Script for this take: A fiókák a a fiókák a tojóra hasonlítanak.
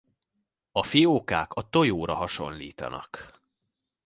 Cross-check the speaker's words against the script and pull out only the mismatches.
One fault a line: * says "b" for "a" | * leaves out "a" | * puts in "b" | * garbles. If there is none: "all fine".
* leaves out "a fiókák a"